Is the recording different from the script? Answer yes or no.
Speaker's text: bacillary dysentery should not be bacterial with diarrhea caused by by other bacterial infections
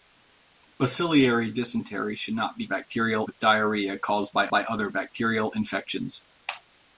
no